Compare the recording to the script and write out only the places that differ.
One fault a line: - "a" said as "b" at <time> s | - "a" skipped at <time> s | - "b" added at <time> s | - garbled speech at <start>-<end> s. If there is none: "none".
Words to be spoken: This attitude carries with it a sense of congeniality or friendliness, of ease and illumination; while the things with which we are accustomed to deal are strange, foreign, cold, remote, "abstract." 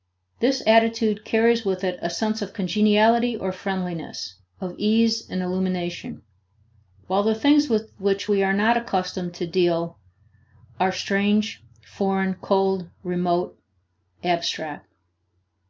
- "not" added at 8.5 s